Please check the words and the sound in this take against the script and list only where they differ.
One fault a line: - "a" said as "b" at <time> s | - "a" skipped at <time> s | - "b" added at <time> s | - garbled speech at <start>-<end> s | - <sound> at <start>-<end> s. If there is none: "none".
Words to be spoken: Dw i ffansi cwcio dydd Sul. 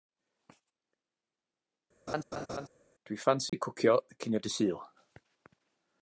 - laugh at 2.1-2.7 s
- dropout at 3.5-3.5 s
- "cinio" added at 4.2 s